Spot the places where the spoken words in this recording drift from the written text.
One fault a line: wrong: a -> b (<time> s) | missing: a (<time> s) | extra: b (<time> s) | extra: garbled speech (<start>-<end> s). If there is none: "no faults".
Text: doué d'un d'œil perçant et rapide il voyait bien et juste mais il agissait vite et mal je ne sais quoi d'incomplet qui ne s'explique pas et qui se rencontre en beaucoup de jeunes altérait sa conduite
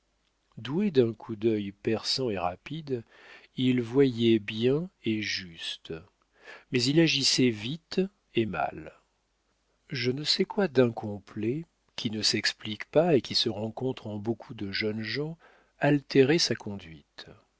extra: coup (1.1 s)
extra: gens (15.0 s)